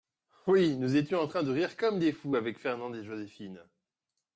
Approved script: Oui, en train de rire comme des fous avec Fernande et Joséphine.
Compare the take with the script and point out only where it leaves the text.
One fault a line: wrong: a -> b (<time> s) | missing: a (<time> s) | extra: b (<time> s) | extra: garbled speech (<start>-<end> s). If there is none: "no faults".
extra: nous étions (0.8 s)